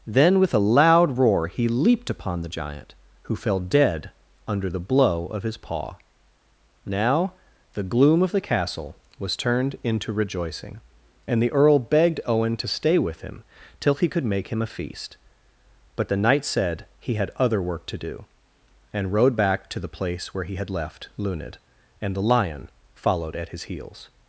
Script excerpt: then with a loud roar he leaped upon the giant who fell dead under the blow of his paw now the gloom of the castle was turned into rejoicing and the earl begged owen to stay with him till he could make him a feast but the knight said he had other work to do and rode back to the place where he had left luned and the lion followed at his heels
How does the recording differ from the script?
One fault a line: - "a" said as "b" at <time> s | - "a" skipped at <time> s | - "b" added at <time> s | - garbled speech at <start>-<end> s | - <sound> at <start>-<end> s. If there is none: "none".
none